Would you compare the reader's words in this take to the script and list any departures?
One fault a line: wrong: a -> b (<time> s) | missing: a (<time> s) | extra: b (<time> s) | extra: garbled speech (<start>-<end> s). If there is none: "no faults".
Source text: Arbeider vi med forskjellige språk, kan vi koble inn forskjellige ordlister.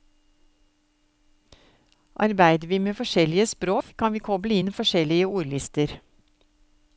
no faults